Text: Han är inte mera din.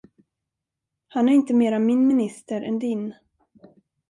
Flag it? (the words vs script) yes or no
yes